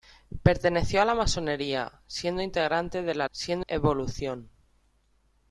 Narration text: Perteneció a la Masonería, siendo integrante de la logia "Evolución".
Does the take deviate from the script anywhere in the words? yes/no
yes